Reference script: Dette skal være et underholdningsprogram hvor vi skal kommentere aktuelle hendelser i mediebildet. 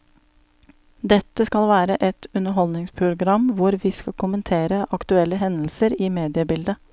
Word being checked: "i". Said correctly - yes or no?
yes